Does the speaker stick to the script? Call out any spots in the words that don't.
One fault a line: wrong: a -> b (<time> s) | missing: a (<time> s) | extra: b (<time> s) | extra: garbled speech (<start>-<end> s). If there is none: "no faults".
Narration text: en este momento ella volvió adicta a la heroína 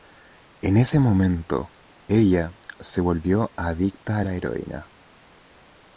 wrong: este -> ese (0.8 s)
extra: se (2.8 s)